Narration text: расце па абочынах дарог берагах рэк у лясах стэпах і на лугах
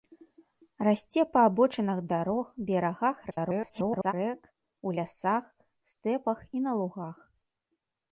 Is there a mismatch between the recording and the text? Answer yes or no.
yes